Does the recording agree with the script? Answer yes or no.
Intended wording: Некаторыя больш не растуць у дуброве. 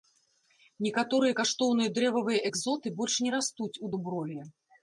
no